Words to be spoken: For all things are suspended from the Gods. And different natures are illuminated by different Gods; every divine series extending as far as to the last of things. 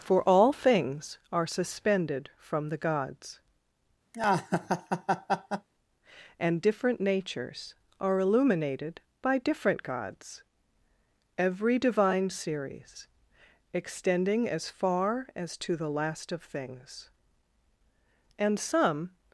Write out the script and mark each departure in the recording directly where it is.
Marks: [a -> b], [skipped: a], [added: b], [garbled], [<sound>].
For all things are suspended from the Gods. [laugh] And different natures are illuminated by different Gods; every divine series extending as far as to the last of things. [added: And some]